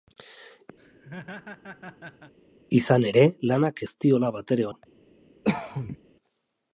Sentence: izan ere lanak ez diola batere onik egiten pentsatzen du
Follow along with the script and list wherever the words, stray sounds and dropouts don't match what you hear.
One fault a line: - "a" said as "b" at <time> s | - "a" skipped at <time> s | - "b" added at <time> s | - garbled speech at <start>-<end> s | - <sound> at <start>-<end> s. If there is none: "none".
- laugh at 0.8-2.3 s
- "onik egiten pentsatzen" skipped at 4.7 s
- cough at 5.4-6.0 s